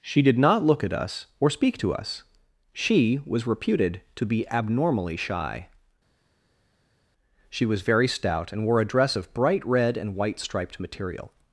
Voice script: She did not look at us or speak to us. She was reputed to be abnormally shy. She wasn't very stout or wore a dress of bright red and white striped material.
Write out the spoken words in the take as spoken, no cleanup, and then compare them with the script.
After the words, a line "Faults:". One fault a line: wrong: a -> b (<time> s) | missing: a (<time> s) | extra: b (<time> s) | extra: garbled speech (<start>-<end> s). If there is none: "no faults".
She did not look at us or speak to us. She was reputed to be abnormally shy. She was very stout and wore a dress of bright red and white striped material.
Faults:
wrong: wasn't -> was (7.7 s)
wrong: or -> and (8.5 s)